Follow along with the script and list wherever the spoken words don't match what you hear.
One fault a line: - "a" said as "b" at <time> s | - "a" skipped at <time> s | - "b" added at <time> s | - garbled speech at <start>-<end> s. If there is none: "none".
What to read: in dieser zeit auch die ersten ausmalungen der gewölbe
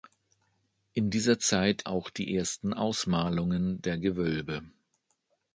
none